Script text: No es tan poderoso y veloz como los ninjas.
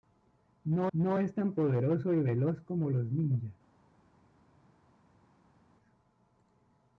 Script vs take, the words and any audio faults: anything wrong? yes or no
yes